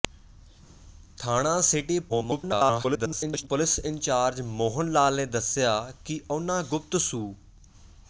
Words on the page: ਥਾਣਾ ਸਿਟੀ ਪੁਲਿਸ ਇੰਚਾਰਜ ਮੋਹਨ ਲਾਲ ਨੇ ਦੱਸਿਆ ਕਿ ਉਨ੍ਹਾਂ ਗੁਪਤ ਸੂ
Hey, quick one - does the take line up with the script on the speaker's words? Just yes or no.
no